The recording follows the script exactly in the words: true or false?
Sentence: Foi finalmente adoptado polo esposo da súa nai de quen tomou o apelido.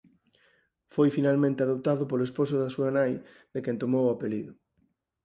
true